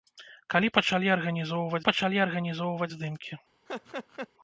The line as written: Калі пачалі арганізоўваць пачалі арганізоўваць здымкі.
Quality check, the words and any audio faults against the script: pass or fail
fail